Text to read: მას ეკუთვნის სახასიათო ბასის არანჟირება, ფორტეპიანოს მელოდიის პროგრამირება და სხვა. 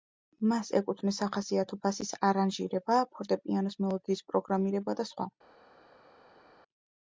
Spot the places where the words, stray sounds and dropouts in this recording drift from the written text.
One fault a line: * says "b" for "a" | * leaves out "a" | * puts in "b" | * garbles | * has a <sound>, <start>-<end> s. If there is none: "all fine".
all fine